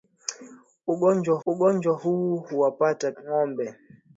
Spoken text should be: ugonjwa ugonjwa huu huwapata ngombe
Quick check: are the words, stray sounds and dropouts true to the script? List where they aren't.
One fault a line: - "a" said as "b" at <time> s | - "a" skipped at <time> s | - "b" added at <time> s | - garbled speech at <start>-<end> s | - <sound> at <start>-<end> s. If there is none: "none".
none